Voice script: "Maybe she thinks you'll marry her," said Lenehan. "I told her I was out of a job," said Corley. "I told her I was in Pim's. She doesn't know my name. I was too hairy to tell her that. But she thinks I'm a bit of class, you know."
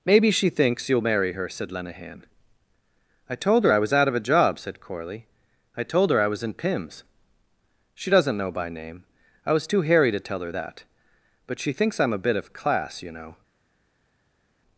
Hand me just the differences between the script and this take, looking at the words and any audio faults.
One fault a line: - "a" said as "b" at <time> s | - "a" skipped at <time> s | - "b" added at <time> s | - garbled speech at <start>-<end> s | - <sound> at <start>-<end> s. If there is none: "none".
- "my" said as "by" at 8.5 s